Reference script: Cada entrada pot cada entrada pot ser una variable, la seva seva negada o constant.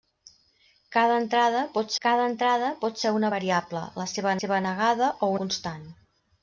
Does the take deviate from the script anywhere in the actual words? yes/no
no